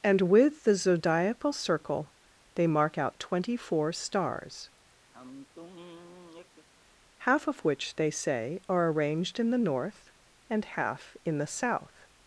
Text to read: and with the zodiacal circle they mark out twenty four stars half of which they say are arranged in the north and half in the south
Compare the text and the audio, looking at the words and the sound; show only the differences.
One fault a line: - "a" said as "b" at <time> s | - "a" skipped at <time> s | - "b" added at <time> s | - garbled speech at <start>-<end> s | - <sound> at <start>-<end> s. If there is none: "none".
- sigh at 5.1-6.7 s